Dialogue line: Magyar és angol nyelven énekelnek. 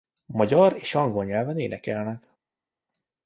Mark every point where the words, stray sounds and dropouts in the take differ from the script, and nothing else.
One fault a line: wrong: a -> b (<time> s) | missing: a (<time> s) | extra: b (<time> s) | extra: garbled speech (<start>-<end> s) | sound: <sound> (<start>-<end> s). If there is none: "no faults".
no faults